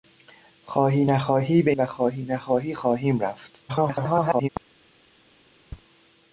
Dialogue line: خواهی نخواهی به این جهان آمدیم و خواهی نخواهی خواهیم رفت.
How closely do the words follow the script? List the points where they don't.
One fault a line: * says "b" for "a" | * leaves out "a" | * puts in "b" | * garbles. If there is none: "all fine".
* leaves out "این جهان آمدیم"
* garbles